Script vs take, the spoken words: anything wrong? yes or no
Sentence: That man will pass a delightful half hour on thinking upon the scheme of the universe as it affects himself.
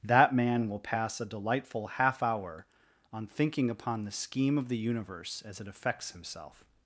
no